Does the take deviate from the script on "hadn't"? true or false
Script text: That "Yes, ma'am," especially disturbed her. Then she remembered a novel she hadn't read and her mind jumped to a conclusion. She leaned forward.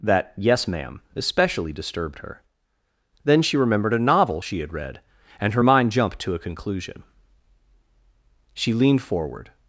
true